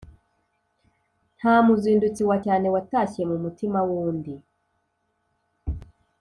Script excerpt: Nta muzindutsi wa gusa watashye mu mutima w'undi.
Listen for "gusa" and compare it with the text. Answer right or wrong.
wrong